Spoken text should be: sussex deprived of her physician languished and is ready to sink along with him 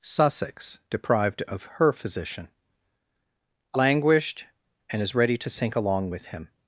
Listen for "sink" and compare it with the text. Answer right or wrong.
right